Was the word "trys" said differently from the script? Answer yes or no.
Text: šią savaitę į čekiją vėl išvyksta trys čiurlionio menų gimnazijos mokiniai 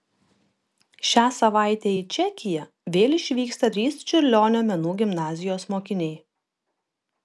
no